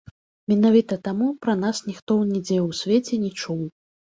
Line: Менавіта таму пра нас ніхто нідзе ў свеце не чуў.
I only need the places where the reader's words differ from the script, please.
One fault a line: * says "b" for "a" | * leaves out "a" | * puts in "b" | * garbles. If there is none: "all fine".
all fine